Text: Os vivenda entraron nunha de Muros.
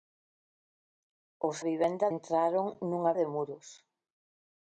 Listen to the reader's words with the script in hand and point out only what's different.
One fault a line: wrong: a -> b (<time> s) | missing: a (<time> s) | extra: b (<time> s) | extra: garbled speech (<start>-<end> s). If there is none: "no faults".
no faults